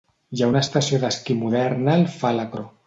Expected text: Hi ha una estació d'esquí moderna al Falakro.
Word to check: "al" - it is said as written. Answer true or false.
true